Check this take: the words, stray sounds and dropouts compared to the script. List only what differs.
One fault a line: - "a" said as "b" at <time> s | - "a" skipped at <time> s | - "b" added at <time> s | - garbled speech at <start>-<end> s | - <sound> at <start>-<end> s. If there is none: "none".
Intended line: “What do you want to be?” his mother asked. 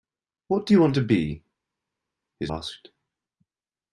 - "mother" skipped at 2.5 s